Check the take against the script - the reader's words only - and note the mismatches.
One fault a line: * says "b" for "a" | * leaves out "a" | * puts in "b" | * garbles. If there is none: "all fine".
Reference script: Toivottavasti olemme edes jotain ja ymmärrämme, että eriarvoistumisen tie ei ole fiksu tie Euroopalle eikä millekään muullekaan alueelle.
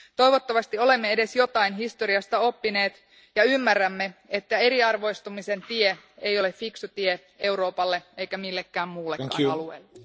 * puts in "historiasta oppineet"